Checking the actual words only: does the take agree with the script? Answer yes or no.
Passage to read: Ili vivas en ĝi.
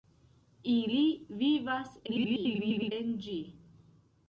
no